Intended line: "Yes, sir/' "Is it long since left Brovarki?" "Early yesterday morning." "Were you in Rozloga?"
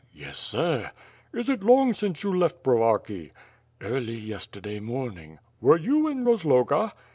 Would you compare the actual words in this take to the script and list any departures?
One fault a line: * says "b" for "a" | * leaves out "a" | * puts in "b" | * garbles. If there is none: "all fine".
* puts in "you"